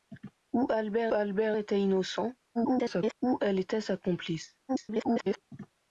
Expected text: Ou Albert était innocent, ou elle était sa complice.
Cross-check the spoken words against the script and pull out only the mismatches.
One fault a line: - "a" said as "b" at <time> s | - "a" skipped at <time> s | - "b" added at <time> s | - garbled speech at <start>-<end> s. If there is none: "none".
- "Albert" added at 1.1 s
- garbled speech at 2.5-3.1 s
- garbled speech at 4.7-5.4 s